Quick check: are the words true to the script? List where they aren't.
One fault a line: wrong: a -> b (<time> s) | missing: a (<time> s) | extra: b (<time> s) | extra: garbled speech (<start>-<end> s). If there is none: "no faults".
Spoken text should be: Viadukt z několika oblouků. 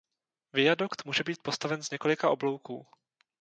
extra: může být postaven (1.1 s)